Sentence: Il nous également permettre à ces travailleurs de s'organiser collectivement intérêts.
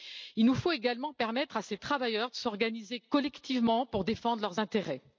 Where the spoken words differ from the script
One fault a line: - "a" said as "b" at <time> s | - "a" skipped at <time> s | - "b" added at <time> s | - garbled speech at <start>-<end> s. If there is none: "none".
- "faut" added at 0.6 s
- "pour défendre leurs" added at 3.8 s